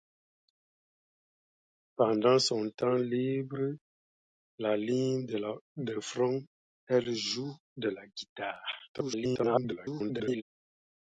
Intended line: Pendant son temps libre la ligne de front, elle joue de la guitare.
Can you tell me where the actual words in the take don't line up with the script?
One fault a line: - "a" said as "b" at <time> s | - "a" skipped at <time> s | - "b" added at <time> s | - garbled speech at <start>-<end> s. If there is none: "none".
- garbled speech at 8.9-10.4 s